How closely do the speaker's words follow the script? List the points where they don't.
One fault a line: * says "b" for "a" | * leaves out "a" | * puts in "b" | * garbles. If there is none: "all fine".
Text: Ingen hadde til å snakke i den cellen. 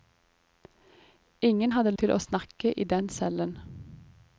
all fine